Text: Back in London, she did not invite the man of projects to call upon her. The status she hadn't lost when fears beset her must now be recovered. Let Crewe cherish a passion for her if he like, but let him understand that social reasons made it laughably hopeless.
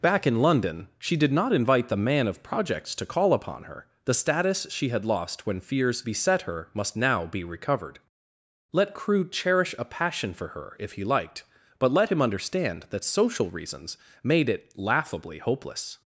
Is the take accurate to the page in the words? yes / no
no